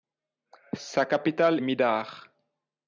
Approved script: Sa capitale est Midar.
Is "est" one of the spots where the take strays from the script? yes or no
yes